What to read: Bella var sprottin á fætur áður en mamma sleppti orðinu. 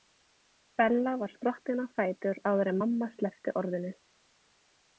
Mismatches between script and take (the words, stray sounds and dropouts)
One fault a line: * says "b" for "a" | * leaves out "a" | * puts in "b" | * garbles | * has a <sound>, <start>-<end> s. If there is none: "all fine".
all fine